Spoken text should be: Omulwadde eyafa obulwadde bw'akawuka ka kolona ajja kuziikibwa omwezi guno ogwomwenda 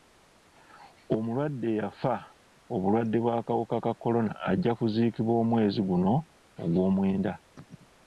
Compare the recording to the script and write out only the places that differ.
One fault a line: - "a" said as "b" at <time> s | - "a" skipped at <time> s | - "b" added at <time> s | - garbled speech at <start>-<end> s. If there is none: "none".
none